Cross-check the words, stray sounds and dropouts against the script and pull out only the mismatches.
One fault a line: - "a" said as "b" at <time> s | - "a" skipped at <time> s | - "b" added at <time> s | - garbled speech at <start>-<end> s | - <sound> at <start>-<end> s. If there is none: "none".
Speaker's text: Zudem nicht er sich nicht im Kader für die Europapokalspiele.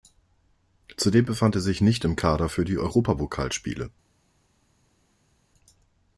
- "nicht" said as "befand" at 1.2 s